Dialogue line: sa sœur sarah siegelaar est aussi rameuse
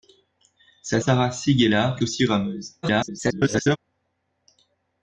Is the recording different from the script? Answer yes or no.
yes